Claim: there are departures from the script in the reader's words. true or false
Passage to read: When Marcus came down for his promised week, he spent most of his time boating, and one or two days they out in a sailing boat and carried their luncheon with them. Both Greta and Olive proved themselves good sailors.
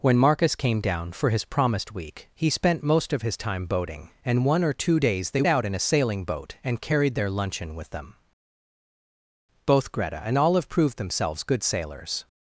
false